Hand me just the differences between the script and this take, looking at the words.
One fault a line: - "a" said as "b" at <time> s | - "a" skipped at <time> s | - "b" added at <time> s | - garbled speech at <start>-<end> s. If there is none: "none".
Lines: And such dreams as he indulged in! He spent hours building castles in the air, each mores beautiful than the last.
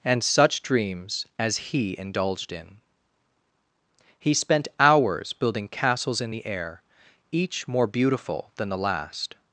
- "mores" said as "more" at 7.7 s